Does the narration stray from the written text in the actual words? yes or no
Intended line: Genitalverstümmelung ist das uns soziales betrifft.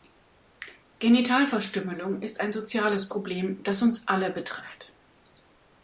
yes